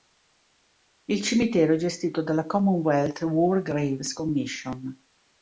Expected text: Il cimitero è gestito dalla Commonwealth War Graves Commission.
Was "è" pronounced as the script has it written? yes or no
yes